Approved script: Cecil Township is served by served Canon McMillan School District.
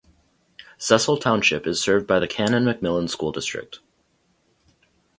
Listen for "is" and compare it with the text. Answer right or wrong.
right